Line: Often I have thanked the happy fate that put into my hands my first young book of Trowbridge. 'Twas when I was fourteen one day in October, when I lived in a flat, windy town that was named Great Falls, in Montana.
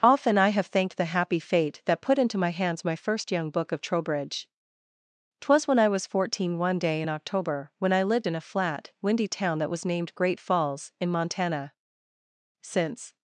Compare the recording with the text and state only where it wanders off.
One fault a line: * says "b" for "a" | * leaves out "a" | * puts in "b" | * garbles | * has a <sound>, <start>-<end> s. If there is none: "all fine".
* puts in "Since"